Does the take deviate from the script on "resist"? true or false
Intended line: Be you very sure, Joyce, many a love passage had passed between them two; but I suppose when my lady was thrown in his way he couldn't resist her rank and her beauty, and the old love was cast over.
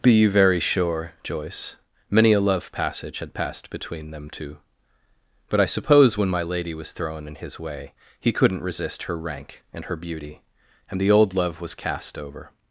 false